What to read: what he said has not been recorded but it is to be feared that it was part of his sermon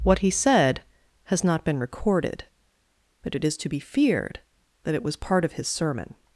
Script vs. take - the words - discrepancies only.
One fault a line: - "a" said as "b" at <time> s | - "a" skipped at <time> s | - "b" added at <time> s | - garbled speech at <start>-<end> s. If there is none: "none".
none